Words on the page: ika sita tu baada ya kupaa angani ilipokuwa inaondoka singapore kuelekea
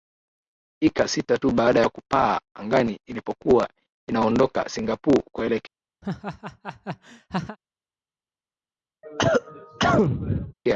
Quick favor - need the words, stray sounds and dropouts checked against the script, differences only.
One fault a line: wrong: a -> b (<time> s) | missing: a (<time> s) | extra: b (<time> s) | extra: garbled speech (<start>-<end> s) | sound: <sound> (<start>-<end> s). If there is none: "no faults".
sound: laugh (6.0-7.6 s)
sound: cough (9.0-10.5 s)